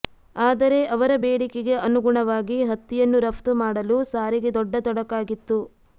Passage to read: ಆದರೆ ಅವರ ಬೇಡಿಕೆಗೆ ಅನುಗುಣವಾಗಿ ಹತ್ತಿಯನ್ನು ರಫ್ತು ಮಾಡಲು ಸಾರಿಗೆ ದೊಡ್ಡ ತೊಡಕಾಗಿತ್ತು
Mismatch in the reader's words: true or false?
false